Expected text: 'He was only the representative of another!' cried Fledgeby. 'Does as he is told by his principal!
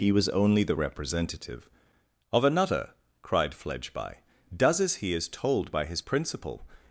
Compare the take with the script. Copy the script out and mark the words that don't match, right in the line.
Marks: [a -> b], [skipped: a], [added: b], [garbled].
'He was only the representative of another!' cried Fledgeby. 'Does as he is told by his principal!